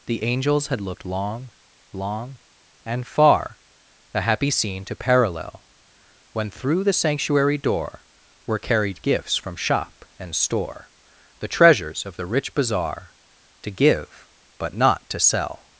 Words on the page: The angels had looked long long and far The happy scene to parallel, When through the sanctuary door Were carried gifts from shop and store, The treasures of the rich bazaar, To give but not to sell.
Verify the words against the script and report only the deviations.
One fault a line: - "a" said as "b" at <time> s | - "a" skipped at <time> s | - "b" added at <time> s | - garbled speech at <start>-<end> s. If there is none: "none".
none